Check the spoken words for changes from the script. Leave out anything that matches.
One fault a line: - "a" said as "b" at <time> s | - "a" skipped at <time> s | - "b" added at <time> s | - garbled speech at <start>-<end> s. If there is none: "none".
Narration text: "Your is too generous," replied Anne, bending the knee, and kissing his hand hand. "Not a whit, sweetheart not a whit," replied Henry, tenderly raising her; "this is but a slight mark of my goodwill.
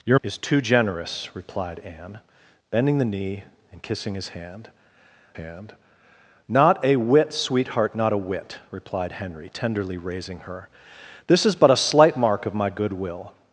none